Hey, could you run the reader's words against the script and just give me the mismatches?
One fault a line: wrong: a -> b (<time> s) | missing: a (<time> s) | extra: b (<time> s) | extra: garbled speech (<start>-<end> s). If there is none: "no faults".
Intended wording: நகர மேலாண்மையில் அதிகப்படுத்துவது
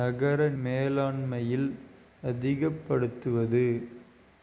no faults